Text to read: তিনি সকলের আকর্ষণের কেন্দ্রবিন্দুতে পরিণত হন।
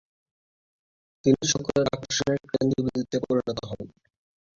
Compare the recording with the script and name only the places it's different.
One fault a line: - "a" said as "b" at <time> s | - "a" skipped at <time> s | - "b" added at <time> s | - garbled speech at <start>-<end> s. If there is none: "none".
none